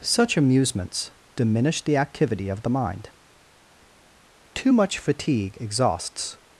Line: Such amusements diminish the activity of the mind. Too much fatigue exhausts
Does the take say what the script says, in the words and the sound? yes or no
yes